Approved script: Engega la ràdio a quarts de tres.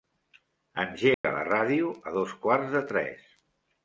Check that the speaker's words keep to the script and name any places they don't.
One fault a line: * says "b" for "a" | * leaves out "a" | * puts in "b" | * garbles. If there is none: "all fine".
* puts in "dos"